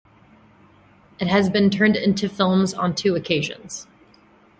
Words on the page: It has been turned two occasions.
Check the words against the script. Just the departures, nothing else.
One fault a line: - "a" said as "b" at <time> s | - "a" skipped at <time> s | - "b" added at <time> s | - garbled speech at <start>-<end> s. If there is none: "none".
- "into films on" added at 1.9 s